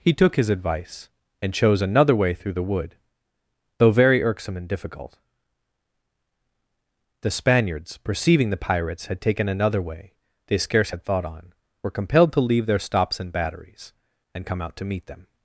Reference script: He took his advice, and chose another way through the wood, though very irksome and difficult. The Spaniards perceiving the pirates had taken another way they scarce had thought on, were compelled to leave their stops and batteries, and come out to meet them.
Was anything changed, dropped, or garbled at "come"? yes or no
no